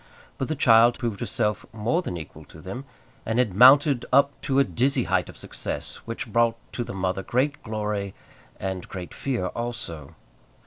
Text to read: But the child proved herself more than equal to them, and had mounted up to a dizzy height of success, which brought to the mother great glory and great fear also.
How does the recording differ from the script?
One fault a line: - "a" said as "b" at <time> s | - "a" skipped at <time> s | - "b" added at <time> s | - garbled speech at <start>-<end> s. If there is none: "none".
none